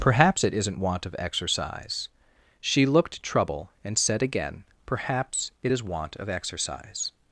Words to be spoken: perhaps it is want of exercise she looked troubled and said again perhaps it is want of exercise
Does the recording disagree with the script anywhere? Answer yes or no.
yes